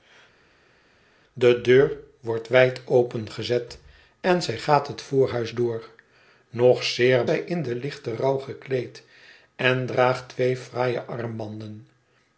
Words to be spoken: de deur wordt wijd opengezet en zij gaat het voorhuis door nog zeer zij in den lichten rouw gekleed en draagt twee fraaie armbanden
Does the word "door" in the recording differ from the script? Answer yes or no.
no